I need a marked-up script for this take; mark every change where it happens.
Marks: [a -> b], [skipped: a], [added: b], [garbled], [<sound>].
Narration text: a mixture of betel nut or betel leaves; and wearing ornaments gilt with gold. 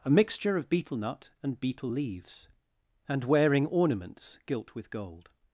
a mixture of betel nut [or -> and] betel leaves; and wearing ornaments gilt with gold.